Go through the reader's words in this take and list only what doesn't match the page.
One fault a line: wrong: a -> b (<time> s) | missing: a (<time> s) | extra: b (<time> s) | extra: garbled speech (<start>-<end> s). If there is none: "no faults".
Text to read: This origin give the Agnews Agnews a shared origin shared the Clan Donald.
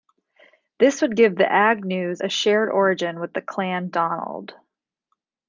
wrong: origin -> would (1.0 s)
missing: Agnews (2.2 s)
wrong: shared -> with (3.2 s)